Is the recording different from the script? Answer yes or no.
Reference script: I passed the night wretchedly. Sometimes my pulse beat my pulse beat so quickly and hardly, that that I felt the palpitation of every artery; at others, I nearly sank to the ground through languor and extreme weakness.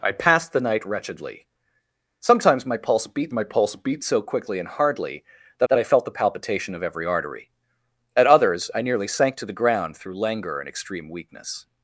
no